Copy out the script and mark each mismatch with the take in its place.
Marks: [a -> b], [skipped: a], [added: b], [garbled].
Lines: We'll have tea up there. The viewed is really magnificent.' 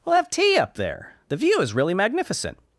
We'll have tea up there. The [viewed -> view] is really magnificent.'